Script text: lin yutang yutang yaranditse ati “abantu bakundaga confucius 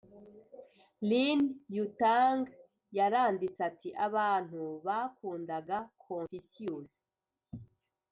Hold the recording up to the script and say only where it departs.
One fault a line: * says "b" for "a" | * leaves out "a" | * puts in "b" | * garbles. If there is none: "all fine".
* leaves out "yutang"